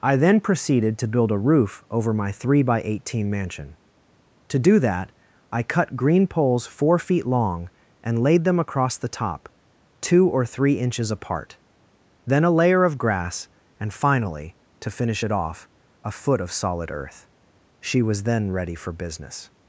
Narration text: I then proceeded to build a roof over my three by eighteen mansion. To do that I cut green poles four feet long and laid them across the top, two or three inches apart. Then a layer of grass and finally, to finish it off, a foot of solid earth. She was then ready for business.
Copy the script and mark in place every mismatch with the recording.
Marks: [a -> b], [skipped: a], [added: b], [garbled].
I then proceeded to build a roof over my three by eighteen mansion. To do that I cut green poles four feet long and laid them across the top, two or three inches apart. Then a layer of grass and finally, to finish it off, a foot of solid earth. She was then ready for business.